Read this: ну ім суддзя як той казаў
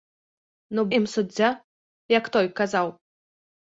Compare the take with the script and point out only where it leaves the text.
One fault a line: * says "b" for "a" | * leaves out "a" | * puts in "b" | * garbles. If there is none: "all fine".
all fine